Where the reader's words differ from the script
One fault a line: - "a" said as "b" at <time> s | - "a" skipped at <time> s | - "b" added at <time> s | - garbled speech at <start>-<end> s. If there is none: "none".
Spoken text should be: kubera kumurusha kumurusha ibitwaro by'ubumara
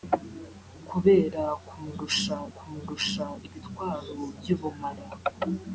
none